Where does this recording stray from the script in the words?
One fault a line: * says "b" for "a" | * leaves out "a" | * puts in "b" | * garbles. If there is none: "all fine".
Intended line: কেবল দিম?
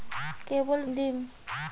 all fine